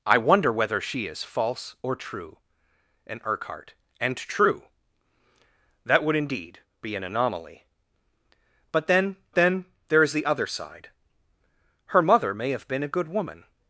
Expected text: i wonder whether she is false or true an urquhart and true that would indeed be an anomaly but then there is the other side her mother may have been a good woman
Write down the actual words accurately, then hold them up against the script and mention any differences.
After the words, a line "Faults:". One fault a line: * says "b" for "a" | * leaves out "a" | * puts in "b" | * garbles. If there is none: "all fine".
i wonder whether she is false or true an urquhart and true that would indeed be an anomaly but then then there is the other side her mother may have been a good woman
Faults:
* puts in "then"